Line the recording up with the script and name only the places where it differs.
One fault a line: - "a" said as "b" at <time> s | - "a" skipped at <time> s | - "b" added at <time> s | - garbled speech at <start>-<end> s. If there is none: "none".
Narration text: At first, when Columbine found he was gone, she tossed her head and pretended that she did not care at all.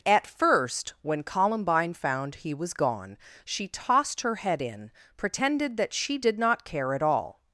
- "and" said as "in" at 4.6 s